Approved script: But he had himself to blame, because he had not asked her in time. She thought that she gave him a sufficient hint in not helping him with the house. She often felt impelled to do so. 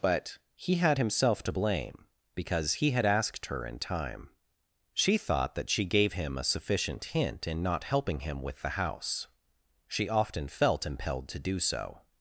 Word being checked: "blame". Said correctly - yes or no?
yes